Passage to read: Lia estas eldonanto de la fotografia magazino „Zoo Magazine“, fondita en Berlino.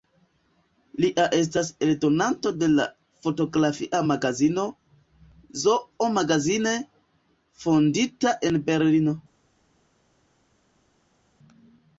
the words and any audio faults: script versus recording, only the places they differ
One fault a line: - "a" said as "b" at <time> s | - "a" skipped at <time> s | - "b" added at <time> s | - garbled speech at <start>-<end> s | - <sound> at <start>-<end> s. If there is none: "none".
none